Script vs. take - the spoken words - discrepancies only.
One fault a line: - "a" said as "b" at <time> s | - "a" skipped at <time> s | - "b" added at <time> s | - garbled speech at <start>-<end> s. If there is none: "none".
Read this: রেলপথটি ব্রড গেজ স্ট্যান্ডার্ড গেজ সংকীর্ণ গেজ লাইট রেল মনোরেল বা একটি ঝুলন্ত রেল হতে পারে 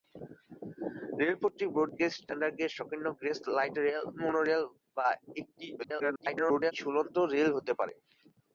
- garbled speech at 5.8-6.7 s